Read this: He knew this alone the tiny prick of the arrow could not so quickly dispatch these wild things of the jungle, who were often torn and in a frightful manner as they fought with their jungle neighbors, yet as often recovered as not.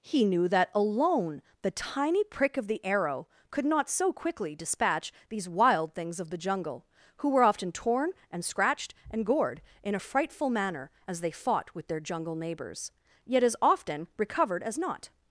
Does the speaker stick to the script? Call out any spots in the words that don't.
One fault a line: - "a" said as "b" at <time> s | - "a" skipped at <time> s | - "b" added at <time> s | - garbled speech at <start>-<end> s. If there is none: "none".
- "this" said as "that" at 0.5 s
- "scratched and gored" added at 8.4 s